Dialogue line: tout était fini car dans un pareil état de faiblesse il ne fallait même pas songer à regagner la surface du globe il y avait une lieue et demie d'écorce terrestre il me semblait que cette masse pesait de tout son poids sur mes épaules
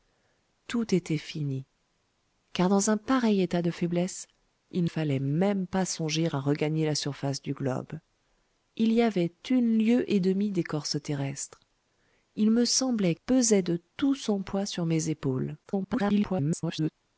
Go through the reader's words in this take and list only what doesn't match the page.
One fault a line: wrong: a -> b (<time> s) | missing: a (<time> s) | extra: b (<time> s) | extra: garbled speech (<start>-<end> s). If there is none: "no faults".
missing: ne (4.8 s)
missing: que cette masse (13.1 s)
extra: garbled speech (15.6-16.9 s)